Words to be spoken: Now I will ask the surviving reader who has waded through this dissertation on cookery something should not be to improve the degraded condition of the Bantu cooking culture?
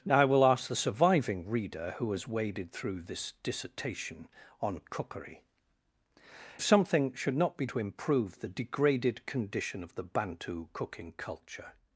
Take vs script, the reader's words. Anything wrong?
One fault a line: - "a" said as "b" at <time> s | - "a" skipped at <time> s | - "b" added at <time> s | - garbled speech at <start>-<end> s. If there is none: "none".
none